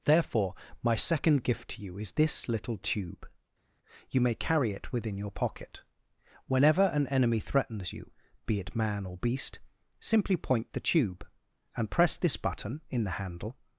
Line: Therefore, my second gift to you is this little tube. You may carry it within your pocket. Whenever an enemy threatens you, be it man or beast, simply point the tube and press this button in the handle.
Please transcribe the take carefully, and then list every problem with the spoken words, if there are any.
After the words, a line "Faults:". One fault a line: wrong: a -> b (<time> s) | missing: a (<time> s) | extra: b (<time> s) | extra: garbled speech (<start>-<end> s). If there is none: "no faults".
Therefore, my second gift to you is this little tube. You may carry it within your pocket. Whenever an enemy threatens you, be it man or beast, simply point the tube and press this button in the handle.
Faults:
no faults